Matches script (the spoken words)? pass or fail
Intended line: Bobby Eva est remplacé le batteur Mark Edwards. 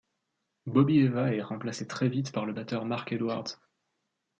fail